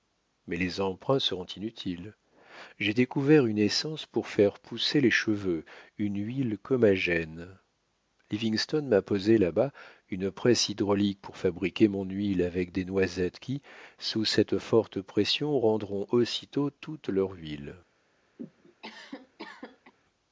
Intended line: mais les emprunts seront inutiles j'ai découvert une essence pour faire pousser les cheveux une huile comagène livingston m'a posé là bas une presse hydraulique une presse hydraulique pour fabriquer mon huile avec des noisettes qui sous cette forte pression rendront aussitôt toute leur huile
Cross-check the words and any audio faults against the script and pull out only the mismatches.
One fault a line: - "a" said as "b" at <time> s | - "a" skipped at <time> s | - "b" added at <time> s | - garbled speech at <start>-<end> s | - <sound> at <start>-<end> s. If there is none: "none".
- "une presse hydraulique" skipped at 11.2 s
- cough at 18.4-19.9 s